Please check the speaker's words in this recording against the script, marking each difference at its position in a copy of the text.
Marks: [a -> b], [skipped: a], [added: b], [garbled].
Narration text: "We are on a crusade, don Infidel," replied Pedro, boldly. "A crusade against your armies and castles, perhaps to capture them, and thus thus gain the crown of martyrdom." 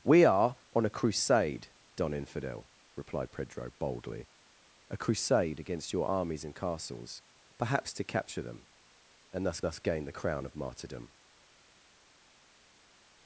"We are on a crusade, don Infidel," replied Pedro, boldly. "A crusade against your armies and castles, perhaps to capture them, and thus thus gain the crown of martyrdom."